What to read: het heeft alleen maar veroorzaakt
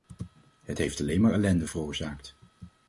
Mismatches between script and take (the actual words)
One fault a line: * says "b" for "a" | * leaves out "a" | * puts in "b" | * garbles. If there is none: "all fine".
* puts in "ellende"